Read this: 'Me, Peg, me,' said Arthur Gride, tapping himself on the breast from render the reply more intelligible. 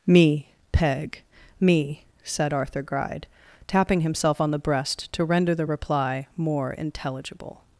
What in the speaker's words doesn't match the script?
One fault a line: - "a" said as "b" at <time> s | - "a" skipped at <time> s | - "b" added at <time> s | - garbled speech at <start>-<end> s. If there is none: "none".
- "from" said as "to" at 5.1 s